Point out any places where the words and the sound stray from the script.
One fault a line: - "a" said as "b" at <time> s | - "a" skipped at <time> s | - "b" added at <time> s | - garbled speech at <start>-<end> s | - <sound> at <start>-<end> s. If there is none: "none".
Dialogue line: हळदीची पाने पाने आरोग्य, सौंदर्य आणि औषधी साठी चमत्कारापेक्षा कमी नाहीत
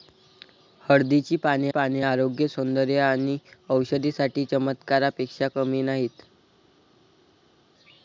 none